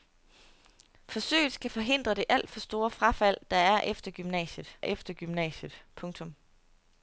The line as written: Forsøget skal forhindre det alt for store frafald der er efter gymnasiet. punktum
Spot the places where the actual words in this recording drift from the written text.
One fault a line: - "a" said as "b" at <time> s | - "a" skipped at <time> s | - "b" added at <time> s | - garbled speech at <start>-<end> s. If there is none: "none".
- "efter gymnasiet" added at 4.8 s